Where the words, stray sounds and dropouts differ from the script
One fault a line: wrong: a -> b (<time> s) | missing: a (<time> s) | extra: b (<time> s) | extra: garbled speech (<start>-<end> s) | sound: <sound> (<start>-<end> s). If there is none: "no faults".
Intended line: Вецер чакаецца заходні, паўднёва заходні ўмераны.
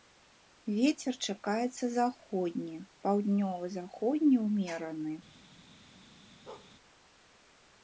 sound: bark (6.5-6.7 s)